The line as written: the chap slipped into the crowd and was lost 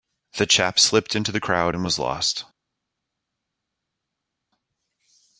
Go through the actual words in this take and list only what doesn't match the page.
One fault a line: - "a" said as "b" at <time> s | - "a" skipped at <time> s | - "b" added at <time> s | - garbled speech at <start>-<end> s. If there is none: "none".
none